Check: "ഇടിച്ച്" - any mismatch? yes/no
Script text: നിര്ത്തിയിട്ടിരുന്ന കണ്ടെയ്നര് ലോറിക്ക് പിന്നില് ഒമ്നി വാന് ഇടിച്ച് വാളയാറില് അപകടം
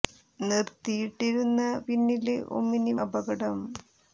yes